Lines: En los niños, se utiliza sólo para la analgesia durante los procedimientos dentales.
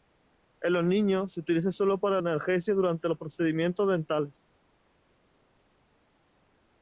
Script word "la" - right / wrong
wrong